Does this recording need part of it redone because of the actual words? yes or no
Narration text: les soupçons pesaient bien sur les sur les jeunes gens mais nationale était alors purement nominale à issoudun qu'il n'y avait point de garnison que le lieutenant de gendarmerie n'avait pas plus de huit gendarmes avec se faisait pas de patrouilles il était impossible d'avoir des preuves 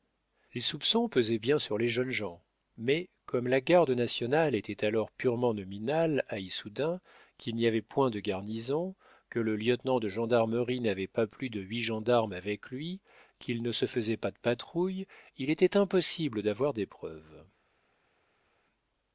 yes